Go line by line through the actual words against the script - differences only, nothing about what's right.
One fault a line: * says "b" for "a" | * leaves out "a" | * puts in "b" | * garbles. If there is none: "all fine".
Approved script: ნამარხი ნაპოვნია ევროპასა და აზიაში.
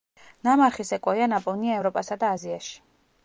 * puts in "სეკვოია"